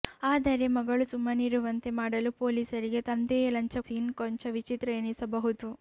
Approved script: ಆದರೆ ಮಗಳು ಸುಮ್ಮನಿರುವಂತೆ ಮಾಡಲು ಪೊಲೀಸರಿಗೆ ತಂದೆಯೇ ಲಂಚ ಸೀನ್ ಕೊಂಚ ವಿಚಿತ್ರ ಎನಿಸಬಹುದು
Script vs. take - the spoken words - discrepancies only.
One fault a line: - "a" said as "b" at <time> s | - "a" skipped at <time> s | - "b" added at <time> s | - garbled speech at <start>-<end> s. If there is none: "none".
none